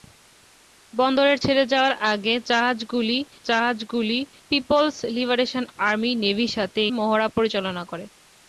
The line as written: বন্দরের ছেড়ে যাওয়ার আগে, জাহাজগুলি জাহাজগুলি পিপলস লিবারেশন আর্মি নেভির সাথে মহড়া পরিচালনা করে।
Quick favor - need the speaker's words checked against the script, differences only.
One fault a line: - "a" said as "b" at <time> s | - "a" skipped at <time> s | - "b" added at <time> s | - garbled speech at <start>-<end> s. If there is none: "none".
none